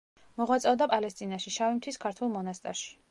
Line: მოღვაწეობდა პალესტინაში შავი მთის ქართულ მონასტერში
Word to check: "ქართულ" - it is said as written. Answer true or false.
true